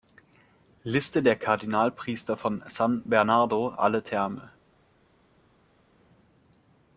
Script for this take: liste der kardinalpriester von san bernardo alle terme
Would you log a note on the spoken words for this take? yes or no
no